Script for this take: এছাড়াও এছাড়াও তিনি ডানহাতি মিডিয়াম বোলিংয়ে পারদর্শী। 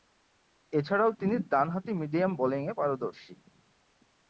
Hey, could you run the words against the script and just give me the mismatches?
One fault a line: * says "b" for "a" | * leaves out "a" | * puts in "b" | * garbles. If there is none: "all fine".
* leaves out "এছাড়াও"